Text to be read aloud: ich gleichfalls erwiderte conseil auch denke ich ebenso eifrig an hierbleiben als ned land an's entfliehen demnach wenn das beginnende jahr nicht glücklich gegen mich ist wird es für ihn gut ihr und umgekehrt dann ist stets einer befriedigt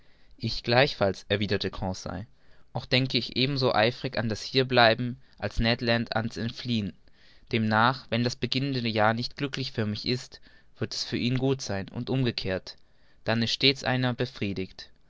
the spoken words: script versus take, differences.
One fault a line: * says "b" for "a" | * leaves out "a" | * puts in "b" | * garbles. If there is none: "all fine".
* puts in "das"
* says "für" for "gegen"
* says "sein" for "ihr"